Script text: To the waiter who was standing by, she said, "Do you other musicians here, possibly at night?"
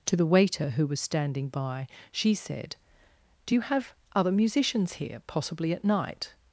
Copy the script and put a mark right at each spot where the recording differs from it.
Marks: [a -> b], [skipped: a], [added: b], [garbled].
To the waiter who was standing by, she said, "Do you [added: have] other musicians here, possibly at night?"